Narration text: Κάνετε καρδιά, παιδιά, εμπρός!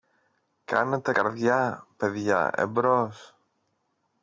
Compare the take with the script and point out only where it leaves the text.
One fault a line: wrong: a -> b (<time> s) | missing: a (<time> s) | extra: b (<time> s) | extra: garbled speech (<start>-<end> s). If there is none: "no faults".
no faults